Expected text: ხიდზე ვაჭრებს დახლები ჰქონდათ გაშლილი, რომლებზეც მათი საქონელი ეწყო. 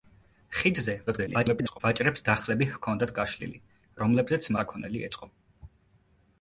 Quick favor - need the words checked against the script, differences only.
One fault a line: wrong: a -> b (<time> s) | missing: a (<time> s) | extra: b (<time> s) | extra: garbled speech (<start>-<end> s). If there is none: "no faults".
extra: garbled speech (1.1-1.8 s)
missing: მათი (4.5 s)